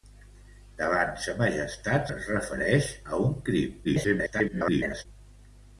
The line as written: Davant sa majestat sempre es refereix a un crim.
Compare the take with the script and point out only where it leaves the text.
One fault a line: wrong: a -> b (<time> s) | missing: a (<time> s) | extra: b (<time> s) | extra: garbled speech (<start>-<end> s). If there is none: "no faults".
missing: sempre (2.1 s)
extra: garbled speech (3.8-5.1 s)